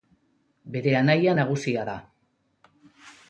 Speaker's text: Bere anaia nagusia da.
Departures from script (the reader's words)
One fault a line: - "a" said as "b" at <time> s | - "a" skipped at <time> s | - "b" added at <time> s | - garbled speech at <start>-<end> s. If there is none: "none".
none